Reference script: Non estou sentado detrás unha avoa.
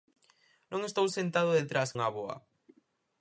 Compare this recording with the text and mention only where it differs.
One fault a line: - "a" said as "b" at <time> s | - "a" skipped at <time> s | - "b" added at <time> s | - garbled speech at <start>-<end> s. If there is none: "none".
none